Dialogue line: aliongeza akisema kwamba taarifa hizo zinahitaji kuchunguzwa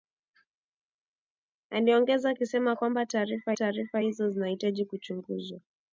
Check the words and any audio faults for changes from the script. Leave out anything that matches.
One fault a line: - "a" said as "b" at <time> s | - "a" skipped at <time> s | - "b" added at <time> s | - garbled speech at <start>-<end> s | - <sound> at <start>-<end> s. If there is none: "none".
- "taarifa" added at 3.5 s